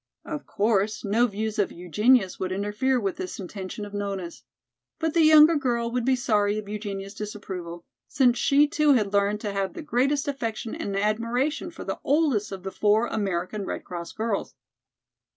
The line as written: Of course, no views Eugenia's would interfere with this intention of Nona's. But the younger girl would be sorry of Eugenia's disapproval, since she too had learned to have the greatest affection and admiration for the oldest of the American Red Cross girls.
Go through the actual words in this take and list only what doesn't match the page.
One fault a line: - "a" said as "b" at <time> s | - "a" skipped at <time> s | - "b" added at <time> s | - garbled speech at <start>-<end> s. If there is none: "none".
- "of" added at 1.6 s
- "four" added at 12.7 s